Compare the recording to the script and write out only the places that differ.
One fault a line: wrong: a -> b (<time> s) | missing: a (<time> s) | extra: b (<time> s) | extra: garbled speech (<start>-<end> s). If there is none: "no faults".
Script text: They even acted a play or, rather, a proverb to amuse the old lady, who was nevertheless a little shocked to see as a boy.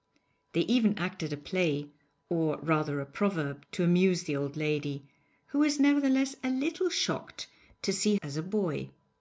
no faults